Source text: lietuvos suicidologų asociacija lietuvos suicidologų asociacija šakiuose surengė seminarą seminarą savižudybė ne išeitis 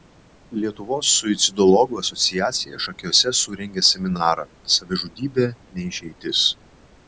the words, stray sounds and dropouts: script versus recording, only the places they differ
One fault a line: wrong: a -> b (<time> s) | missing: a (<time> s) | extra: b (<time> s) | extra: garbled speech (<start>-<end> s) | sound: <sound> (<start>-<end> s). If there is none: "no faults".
missing: lietuvos suicidologų asociacija (2.8 s)
missing: seminarą (4.5 s)